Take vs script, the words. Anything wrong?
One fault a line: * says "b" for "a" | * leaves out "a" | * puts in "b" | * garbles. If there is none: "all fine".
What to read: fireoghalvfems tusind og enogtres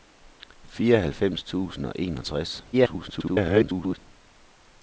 * garbles